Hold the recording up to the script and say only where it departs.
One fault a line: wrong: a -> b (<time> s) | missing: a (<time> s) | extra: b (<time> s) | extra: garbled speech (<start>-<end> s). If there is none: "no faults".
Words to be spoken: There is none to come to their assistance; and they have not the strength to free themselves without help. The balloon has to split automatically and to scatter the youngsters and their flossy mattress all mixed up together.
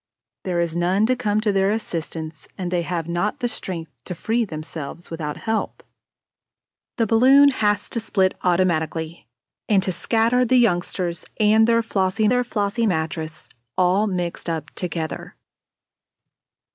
extra: their flossy (12.3 s)